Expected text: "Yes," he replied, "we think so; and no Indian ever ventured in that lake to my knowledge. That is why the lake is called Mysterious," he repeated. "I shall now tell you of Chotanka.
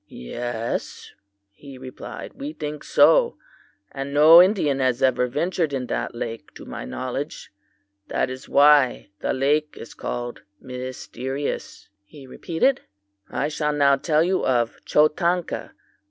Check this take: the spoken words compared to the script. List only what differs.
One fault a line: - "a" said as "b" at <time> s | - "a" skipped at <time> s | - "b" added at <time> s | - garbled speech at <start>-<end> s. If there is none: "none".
- "has" added at 4.8 s